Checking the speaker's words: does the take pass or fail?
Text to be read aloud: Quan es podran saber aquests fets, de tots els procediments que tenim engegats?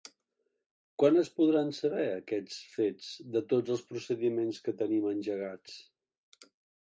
pass